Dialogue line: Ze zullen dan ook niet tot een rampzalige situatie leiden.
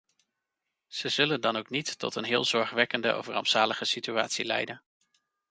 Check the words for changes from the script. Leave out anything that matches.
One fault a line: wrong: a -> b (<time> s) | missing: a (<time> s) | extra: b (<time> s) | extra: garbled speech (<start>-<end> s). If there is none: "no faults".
extra: heel zorgwekkende of (2.2 s)